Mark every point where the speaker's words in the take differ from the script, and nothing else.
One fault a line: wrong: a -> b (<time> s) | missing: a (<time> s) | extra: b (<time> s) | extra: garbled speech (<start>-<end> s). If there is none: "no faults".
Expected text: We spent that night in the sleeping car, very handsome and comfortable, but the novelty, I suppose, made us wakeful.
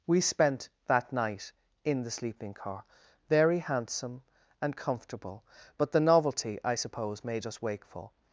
no faults